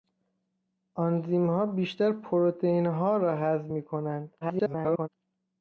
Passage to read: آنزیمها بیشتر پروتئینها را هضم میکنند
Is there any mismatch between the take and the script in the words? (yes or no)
yes